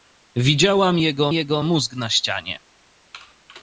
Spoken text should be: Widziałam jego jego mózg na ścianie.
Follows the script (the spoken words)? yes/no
yes